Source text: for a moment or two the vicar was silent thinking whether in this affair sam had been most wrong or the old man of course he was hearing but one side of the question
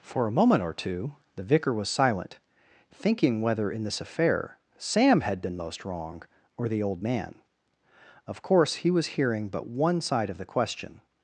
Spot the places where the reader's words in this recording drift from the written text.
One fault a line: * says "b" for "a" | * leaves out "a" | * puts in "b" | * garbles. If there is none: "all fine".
all fine